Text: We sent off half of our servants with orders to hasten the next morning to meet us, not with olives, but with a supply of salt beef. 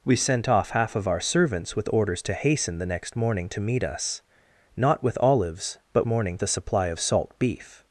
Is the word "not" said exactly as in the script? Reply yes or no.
yes